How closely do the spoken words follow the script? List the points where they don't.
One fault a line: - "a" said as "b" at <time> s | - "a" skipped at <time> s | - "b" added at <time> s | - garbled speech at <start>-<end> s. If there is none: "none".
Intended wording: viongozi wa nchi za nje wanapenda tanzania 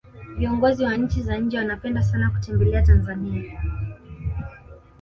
- "sana kutembelea" added at 2.0 s